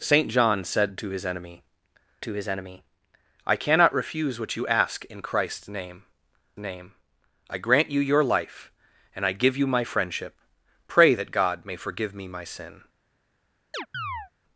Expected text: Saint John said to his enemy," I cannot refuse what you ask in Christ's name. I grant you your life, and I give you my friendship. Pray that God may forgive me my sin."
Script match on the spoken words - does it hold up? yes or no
no